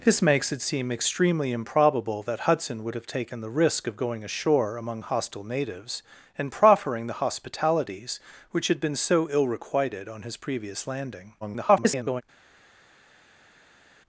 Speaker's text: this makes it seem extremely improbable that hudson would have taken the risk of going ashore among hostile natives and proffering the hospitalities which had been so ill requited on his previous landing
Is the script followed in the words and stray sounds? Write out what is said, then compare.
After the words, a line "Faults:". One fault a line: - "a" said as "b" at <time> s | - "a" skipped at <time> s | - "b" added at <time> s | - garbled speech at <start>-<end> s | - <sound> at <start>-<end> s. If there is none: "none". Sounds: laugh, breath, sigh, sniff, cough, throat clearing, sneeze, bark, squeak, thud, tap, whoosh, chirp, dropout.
this makes it seem extremely improbable that hudson would have taken the risk of going ashore among hostile natives and proffering the hospitalities which had been so ill requited on his previous landing [garbled]
Faults:
- garbled speech at 11.4-12.2 s